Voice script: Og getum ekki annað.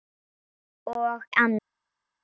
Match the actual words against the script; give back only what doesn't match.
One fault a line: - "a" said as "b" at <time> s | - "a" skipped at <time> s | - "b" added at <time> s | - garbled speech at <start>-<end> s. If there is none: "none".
- "getum ekki" skipped at 1.2 s